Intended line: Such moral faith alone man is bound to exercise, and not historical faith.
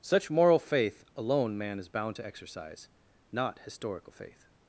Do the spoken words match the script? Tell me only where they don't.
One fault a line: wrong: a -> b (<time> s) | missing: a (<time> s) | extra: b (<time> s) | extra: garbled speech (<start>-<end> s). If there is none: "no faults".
missing: and (2.9 s)